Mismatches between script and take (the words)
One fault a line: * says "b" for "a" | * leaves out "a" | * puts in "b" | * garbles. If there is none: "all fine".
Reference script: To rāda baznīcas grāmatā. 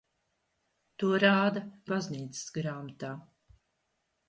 all fine